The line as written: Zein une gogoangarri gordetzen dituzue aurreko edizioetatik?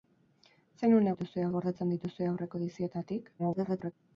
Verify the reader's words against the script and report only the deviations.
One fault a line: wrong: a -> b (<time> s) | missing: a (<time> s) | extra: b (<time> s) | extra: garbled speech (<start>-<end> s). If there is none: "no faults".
wrong: gogoangarri -> dituzue (1.1 s)
extra: garbled speech (3.4-3.9 s)